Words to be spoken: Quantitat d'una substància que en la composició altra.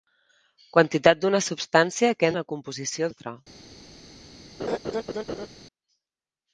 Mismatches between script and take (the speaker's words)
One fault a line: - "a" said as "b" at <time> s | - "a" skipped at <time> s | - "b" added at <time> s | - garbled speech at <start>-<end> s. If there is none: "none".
none